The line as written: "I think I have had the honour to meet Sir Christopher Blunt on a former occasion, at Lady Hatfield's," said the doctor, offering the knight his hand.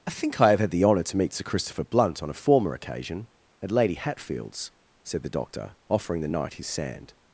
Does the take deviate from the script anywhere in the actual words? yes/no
yes